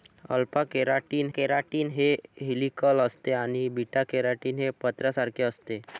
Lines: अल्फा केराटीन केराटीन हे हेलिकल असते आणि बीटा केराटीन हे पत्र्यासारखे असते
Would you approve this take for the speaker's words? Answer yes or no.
yes